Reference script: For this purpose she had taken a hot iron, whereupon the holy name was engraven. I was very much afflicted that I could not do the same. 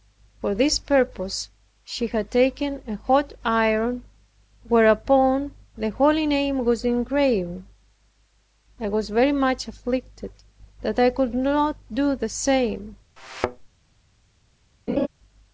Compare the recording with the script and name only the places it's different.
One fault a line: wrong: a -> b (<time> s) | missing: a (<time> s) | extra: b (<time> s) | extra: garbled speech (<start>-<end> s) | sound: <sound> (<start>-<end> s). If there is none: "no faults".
sound: thud (13.2-13.7 s)
sound: laugh (14.9-15.1 s)